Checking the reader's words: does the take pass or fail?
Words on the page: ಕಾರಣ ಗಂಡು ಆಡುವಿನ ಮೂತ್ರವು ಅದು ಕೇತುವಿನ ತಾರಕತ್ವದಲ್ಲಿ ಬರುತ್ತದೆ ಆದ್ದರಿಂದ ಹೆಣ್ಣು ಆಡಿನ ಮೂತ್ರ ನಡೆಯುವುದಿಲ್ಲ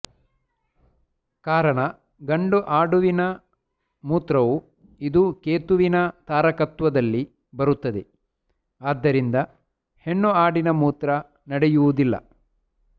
fail